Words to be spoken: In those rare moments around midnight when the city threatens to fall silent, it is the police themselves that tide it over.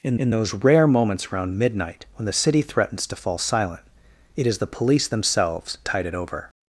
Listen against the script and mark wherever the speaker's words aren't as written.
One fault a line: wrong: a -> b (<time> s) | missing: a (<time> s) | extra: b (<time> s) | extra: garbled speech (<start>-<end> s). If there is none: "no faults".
extra: in (0.2 s)
missing: that (5.8 s)